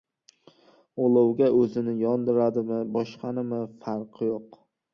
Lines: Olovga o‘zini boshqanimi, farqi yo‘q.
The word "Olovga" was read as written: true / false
true